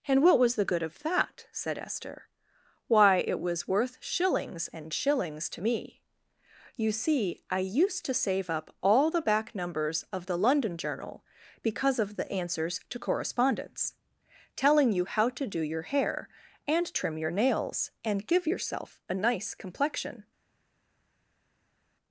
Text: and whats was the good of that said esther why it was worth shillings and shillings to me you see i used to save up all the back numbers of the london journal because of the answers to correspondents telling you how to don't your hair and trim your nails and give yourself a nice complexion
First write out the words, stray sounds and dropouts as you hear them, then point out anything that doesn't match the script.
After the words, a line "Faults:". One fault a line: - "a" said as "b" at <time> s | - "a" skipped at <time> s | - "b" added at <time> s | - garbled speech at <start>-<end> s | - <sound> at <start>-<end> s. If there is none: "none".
and what was the good of that said esther why it was worth shillings and shillings to me you see i used to save up all the back numbers of the london journal because of the answers to correspondents telling you how to do your hair and trim your nails and give yourself a nice complexion
Faults:
- "whats" said as "what" at 0.2 s
- "don't" said as "do" at 15.5 s